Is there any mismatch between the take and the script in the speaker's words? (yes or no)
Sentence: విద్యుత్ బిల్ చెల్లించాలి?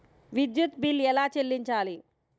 yes